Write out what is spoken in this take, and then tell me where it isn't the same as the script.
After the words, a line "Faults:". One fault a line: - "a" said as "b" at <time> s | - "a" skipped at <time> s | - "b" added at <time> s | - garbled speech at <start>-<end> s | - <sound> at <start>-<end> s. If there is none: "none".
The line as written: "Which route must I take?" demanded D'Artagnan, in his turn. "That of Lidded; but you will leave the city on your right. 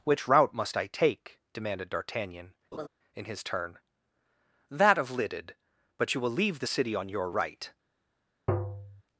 "Which route must I take?" demanded D'Artagnan, in his turn. "That of Lidded; but you will leave the city on your right.
Faults:
- laugh at 2.7-2.9 s
- tap at 8.5-9.0 s